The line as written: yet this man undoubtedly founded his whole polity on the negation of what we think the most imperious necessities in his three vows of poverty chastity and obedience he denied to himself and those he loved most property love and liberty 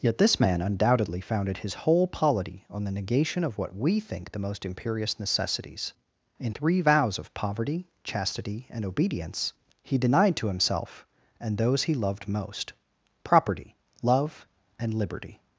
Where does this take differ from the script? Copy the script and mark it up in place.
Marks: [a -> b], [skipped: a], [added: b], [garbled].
yet this man undoubtedly founded his whole polity on the negation of what we think the most imperious necessities in [skipped: his] three vows of poverty chastity and obedience he denied to himself and those he loved most property love and liberty